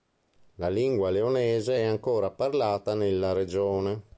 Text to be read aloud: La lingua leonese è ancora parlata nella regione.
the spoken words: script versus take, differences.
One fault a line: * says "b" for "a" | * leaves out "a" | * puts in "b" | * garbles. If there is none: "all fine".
all fine